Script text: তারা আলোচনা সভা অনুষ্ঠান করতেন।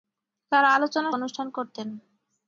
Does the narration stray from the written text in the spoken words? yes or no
yes